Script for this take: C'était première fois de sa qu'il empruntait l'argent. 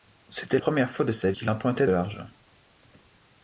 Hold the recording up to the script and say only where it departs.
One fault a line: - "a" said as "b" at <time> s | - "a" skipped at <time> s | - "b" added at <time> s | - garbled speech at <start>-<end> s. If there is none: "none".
none